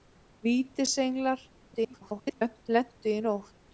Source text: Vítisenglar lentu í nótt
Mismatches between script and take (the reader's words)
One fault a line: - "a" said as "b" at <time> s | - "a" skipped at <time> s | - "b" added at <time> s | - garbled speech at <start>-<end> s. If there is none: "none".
- garbled speech at 1.7-2.7 s